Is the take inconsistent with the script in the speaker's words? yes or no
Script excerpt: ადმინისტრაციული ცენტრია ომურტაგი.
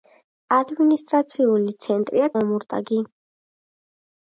no